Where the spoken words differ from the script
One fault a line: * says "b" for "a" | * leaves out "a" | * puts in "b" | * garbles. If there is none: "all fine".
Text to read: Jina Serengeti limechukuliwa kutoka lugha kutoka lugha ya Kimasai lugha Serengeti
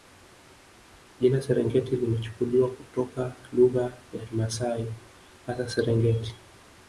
* leaves out "kutoka lugha"
* says "hasa" for "lugha"